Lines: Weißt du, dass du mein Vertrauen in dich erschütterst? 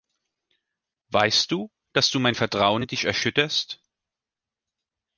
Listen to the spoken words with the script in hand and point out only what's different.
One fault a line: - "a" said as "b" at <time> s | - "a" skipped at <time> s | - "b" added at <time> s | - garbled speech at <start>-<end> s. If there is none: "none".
none